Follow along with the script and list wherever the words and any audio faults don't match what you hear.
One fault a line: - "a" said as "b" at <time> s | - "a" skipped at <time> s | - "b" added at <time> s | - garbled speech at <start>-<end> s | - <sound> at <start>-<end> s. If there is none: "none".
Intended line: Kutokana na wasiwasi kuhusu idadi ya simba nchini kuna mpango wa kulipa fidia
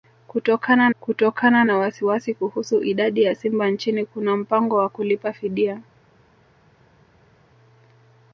- "kutokana" added at 1.0 s